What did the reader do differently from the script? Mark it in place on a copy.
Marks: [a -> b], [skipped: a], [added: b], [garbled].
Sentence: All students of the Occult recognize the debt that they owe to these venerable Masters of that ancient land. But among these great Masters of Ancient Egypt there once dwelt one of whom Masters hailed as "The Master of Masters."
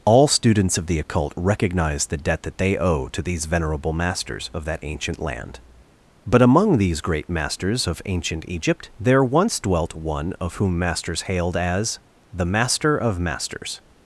All students of the Occult recognize the debt that they owe to these venerable Masters of that ancient land. But among these great Masters of Ancient Egypt there once dwelt one of whom Masters hailed as "The Master of Masters."